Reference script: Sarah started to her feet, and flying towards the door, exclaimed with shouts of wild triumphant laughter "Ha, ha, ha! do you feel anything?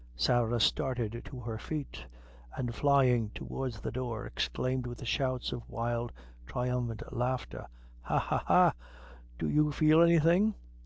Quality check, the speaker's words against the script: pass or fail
pass